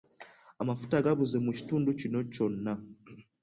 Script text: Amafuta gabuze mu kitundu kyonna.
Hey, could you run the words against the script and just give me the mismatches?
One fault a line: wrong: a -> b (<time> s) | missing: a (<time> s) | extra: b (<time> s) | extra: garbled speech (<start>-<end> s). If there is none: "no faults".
extra: kino (2.0 s)